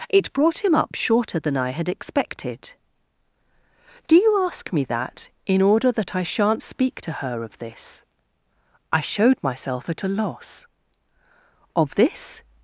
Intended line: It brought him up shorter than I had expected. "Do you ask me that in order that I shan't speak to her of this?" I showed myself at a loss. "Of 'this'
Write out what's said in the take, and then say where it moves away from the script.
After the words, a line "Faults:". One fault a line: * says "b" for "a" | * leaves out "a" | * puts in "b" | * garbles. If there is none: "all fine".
It brought him up shorter than I had expected. "Do you ask me that in order that I shan't speak to her of this?" I showed myself at a loss. "Of 'this'
Faults:
all fine